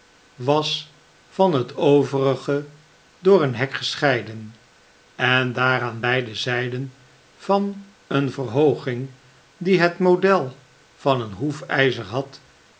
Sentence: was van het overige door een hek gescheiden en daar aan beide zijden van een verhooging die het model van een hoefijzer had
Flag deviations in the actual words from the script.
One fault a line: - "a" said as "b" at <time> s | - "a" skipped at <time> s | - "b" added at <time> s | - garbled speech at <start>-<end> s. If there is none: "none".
none